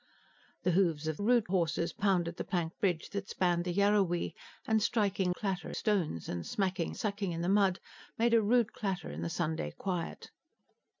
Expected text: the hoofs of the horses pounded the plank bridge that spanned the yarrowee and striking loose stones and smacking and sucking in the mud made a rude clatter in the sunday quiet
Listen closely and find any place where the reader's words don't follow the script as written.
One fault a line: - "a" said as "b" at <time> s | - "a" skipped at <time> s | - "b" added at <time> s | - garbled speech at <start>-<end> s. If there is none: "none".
- "the" said as "rude" at 1.2 s
- "loose" said as "clatter" at 5.3 s
- "and" skipped at 6.9 s